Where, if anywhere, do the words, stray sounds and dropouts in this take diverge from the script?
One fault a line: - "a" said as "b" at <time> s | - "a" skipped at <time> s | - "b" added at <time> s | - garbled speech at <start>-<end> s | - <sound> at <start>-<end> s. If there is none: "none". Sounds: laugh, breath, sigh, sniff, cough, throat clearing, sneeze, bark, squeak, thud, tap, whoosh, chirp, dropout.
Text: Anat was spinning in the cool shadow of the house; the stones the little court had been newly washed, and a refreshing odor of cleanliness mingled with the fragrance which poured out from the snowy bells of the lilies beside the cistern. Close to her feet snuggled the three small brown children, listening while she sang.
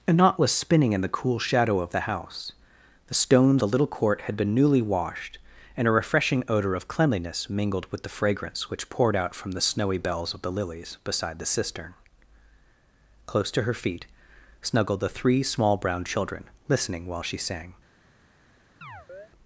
- chirp at 18.8-19.3 s